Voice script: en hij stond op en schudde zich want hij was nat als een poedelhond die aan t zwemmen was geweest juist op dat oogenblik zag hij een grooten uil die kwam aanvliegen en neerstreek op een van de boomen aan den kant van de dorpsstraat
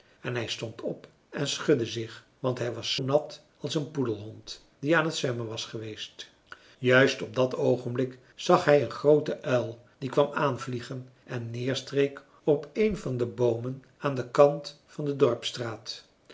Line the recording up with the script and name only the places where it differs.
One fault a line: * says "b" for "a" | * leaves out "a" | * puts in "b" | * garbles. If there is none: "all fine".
all fine